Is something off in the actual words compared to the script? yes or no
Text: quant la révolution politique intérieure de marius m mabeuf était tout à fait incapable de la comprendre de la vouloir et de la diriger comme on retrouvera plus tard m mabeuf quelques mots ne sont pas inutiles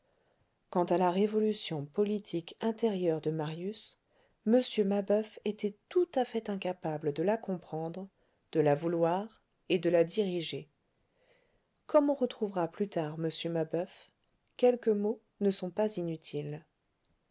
yes